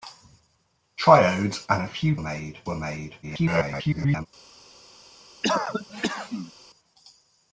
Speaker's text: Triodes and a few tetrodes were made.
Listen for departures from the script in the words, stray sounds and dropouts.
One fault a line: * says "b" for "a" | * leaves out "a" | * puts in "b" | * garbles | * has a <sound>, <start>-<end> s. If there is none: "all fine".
* says "made" for "tetrodes"
* garbles
* has a cough, 5.4-6.5 s